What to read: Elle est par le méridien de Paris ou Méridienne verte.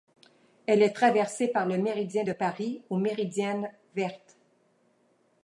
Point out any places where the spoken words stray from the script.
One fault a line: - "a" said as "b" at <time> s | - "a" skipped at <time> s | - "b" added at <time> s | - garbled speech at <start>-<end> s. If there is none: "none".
- "traversée" added at 0.9 s